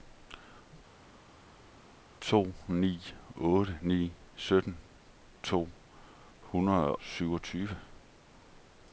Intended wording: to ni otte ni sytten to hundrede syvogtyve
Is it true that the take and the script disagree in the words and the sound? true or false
false